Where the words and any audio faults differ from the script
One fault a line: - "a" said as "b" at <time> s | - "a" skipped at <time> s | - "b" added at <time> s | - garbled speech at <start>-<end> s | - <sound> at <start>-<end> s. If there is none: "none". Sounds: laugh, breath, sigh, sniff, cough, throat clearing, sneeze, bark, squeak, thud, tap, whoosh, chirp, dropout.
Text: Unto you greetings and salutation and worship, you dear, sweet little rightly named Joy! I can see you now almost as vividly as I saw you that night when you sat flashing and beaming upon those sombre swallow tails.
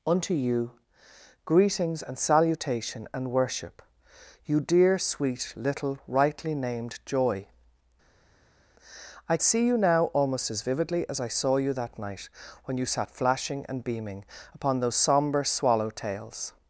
- "can" skipped at 9.4 s